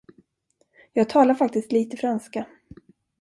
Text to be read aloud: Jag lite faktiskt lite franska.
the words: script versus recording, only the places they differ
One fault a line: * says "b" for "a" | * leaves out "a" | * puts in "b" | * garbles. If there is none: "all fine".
* says "talar" for "lite"